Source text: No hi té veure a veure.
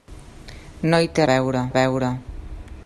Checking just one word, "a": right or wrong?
right